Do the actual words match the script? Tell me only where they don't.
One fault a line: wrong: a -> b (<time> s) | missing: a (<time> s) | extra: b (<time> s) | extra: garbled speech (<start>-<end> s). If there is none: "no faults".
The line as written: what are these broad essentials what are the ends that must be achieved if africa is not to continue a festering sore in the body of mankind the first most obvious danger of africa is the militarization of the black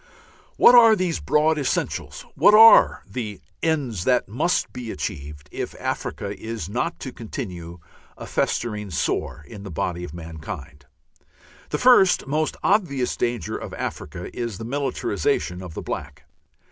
no faults